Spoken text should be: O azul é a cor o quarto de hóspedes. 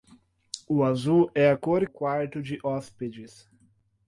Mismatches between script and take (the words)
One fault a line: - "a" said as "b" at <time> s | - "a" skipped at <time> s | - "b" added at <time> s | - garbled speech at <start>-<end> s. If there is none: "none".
none